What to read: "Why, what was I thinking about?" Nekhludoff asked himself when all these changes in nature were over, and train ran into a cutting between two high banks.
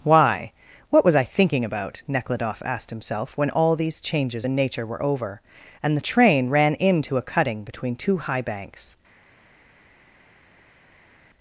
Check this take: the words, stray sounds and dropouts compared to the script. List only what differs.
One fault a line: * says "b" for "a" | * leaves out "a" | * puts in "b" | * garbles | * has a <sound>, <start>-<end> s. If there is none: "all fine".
* puts in "the"